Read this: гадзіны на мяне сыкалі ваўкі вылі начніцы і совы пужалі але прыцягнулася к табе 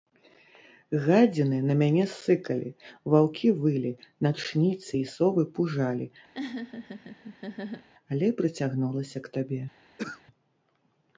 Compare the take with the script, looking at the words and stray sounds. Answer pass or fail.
fail